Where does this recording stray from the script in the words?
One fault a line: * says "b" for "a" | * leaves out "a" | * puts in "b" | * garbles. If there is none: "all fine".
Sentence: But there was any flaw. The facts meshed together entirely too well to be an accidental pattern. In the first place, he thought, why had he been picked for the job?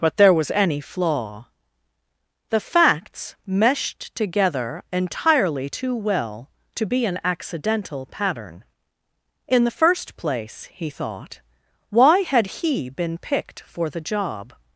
all fine